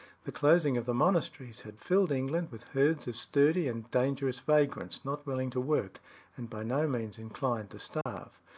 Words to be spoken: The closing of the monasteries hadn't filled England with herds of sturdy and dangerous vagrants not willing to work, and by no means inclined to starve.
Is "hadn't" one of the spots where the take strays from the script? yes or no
yes